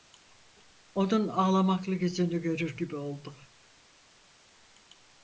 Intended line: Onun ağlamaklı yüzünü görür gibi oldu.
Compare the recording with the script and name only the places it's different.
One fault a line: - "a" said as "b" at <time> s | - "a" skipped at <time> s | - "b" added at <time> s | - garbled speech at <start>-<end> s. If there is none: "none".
none